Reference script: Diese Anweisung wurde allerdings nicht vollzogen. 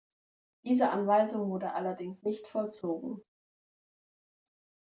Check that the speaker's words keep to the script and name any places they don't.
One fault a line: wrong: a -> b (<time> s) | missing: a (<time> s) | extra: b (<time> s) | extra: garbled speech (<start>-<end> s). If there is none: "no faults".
no faults